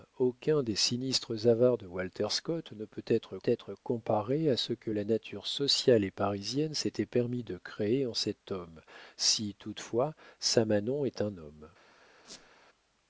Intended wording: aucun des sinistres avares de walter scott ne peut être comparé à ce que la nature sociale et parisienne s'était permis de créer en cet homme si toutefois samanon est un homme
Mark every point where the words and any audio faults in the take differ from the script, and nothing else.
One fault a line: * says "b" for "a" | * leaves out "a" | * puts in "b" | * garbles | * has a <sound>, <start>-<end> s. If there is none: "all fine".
* puts in "être"
* has a squeak, 12.2-12.5 s